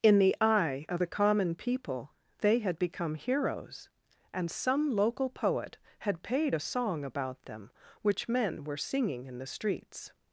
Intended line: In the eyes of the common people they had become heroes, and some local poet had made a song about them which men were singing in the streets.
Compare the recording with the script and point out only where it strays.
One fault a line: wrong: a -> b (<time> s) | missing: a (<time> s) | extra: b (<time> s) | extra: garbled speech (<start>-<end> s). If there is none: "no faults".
wrong: eyes -> eye (0.4 s)
wrong: made -> paid (6.2 s)